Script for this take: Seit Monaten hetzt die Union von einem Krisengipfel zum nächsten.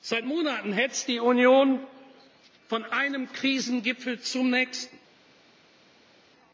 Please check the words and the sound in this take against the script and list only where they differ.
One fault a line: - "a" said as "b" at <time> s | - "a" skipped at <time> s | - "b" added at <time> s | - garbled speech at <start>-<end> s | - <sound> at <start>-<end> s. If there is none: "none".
none